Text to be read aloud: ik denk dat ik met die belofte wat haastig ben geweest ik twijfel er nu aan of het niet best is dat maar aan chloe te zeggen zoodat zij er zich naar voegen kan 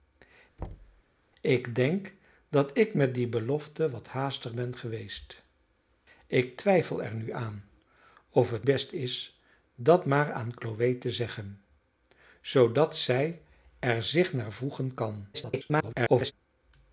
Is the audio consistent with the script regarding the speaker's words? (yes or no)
no